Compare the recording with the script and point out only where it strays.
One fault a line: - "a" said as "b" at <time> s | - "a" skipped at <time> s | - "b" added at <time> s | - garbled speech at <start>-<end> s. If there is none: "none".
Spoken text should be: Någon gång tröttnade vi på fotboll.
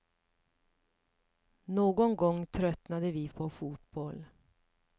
none